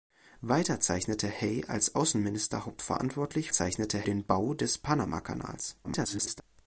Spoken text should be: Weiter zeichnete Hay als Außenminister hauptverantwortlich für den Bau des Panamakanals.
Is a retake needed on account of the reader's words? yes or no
yes